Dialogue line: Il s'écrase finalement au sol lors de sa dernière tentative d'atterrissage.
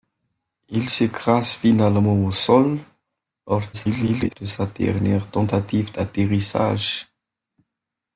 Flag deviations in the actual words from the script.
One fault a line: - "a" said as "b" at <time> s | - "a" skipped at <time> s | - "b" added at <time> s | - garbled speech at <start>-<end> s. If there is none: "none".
- garbled speech at 3.7-4.4 s